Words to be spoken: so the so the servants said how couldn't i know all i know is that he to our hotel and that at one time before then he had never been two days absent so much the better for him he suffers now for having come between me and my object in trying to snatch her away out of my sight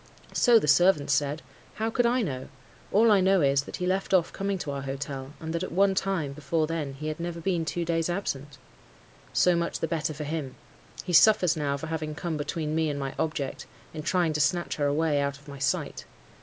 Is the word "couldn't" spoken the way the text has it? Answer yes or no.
no